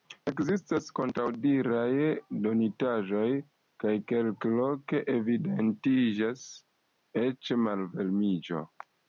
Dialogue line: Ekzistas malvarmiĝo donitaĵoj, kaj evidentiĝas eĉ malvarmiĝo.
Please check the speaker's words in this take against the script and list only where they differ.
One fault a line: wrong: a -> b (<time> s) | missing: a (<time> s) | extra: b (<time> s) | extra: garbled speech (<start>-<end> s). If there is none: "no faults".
wrong: malvarmiĝo -> kontraŭdiraj (1.0 s)
extra: kelkloke (4.1 s)